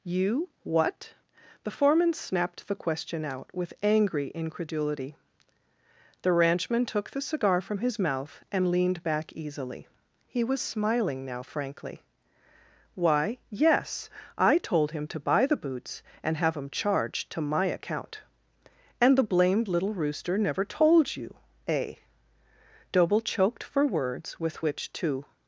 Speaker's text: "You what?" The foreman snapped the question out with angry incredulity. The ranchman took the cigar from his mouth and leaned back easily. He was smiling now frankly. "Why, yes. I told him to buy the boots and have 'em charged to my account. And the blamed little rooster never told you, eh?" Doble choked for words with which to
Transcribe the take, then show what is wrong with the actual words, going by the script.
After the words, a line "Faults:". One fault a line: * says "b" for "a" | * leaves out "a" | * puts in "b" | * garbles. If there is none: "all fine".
"You what?" The foreman snapped the question out with angry incredulity. The ranchman took the cigar from his mouth and leaned back easily. He was smiling now frankly. "Why, yes. I told him to buy the boots and have 'em charged to my account. And the blamed little rooster never told you, eh?" Doble choked for words with which to
Faults:
all fine